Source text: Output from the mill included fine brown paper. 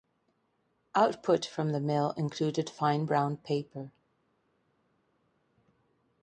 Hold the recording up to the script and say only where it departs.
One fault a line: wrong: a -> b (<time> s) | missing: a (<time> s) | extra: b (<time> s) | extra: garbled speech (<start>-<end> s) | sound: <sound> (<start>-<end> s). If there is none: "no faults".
no faults